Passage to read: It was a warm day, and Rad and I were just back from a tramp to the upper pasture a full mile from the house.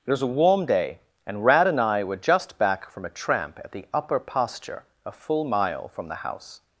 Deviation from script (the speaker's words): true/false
true